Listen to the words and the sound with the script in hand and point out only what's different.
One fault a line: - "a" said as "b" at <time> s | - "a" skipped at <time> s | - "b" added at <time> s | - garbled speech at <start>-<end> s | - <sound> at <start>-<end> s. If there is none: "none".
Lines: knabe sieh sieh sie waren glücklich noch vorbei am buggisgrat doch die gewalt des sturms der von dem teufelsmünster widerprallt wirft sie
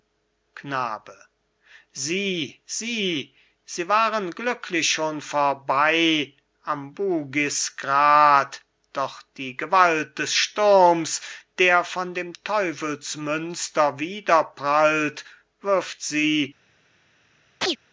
- "noch" said as "schon" at 4.9 s
- chirp at 17.6-17.8 s